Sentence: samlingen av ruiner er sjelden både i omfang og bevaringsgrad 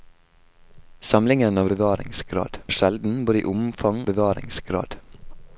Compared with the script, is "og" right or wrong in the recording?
wrong